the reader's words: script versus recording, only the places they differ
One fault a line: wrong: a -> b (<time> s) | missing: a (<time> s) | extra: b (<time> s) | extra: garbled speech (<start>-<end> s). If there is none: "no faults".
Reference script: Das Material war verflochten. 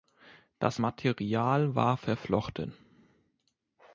no faults